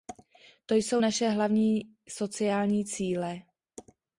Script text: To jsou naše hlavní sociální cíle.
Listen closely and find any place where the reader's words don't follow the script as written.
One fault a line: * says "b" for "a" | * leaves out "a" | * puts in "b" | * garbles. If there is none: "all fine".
all fine